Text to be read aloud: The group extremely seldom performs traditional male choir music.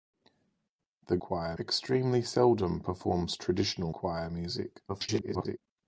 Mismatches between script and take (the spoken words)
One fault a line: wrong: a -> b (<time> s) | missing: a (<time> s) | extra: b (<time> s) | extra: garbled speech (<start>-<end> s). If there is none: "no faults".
wrong: group -> choir (1.2 s)
missing: male (3.9 s)
extra: garbled speech (4.9-5.6 s)